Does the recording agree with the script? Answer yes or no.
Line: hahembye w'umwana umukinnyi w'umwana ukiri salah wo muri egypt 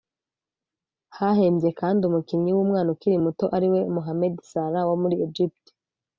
no